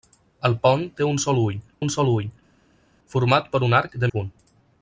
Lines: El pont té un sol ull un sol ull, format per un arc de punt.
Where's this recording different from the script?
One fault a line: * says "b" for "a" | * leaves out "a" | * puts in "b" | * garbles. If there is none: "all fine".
all fine